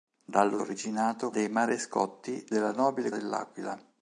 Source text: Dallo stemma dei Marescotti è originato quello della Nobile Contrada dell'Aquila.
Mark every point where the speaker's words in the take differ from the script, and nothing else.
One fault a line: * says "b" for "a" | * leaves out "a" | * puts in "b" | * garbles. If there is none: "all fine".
* says "originato" for "stemma"
* leaves out "è originato quello"
* leaves out "Contrada"